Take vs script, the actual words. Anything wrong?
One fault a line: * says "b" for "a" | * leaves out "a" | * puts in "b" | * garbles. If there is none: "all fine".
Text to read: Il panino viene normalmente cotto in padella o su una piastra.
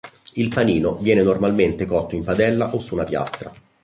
all fine